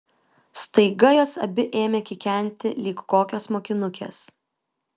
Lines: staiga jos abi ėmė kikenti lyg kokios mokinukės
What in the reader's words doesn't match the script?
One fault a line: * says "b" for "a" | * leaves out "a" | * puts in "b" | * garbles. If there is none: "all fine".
all fine